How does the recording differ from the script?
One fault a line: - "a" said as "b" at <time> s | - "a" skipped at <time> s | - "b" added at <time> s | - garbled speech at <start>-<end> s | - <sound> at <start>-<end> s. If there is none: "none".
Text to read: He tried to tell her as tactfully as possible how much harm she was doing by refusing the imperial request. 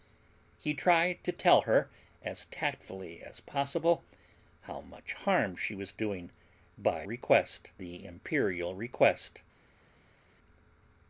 - "refusing" said as "request" at 7.0 s